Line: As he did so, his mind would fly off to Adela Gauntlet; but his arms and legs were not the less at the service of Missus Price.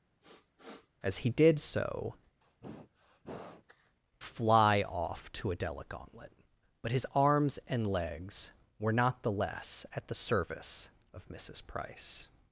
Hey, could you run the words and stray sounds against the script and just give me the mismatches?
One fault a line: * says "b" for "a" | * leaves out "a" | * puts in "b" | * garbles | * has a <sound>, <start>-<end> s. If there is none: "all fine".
* has a sniff, 0.2-0.9 s
* leaves out "his mind would"
* has a sneeze, 2.4-4.0 s